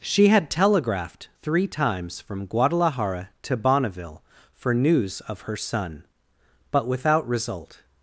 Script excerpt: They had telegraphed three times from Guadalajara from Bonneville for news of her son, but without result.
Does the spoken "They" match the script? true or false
false